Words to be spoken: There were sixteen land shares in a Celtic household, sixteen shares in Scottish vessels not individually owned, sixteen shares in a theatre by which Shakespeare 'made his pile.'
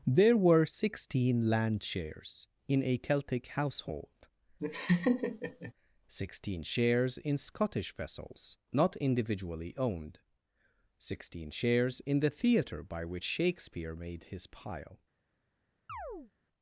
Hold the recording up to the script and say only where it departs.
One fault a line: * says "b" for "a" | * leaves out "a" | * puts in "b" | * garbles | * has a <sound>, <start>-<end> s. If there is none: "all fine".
* has a laugh, 4.6-5.7 s
* says "the" for "a"
* has a chirp, 15.9-16.3 s